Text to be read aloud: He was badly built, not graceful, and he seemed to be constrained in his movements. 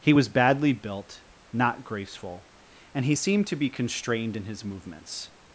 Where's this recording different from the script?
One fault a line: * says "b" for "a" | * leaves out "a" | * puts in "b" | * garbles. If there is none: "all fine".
all fine